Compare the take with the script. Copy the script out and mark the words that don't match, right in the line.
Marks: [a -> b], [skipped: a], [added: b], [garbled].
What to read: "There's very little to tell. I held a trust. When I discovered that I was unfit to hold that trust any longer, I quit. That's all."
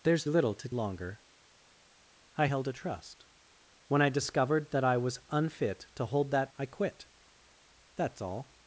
"There's [skipped: very] little to [tell. -> longer] I held a trust. When I discovered that I was unfit to hold that [skipped: trust any longer,] I quit. That's all."